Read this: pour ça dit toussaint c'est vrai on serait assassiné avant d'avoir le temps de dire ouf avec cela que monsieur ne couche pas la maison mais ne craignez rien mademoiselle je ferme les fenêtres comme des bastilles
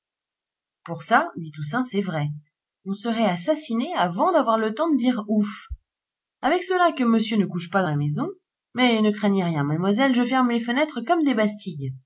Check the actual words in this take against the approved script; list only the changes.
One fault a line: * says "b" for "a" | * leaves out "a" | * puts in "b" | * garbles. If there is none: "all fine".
all fine